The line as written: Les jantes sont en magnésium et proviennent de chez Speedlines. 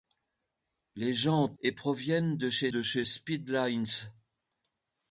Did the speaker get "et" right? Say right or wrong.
wrong